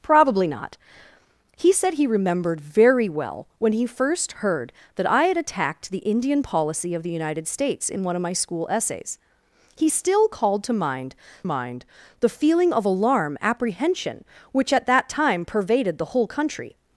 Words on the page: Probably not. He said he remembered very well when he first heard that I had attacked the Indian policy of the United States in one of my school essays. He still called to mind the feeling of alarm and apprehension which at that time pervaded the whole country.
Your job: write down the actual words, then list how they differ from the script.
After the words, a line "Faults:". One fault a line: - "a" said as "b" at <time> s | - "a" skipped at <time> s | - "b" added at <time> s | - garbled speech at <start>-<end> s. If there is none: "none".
Probably not. He said he remembered very well when he first heard that I had attacked the Indian policy of the United States in one of my school essays. He still called to mind mind the feeling of alarm apprehension which at that time pervaded the whole country.
Faults:
- "mind" added at 11.4 s
- "and" skipped at 13.4 s